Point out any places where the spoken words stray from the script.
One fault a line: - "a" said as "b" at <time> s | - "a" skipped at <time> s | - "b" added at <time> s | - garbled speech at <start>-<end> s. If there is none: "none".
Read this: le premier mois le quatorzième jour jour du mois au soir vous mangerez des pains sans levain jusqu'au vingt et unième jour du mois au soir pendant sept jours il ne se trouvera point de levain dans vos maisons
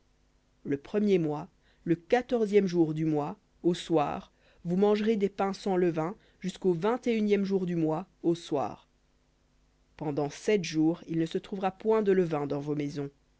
- "jour" skipped at 2.9 s